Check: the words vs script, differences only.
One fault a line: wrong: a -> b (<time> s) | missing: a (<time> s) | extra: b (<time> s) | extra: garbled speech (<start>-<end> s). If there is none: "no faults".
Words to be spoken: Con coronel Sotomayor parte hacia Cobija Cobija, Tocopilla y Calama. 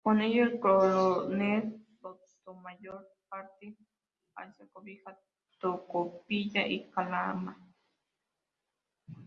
extra: ello el (0.2 s)
missing: Cobija (5.2 s)